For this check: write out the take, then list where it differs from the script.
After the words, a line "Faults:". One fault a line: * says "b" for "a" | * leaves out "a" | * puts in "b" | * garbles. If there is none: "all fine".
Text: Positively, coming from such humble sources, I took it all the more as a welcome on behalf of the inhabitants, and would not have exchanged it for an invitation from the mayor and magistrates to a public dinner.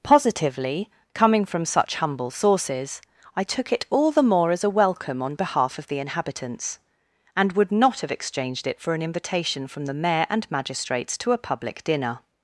Positively, coming from such humble sources, I took it all the more as a welcome on behalf of the inhabitants, and would not have exchanged it for an invitation from the mayor and magistrates to a public dinner.
Faults:
all fine